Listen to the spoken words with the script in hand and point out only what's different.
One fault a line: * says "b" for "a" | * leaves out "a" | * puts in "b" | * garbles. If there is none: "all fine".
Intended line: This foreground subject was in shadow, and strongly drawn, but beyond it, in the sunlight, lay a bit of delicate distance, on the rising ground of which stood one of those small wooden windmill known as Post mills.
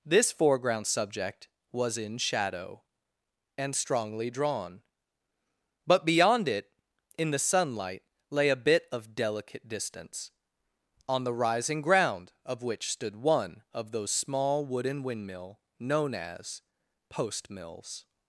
all fine